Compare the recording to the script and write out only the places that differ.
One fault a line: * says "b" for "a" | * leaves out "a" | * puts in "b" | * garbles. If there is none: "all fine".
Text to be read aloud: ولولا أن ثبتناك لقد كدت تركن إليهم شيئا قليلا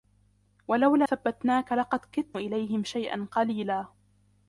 * leaves out "أن"
* leaves out "تركن"